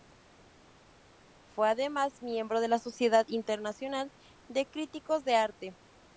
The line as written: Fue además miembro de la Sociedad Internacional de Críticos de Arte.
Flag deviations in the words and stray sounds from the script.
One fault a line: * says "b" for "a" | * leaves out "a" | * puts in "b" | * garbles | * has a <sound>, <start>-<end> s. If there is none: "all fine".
all fine